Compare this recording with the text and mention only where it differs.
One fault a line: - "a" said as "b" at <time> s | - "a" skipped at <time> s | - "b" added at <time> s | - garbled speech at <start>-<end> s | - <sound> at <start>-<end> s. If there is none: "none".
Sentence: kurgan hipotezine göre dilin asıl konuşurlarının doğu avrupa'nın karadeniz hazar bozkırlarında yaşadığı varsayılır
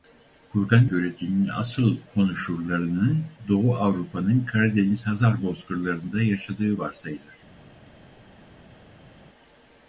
- "hipotezine" skipped at 0.9 s